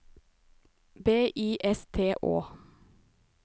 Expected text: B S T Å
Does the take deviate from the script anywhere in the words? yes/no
yes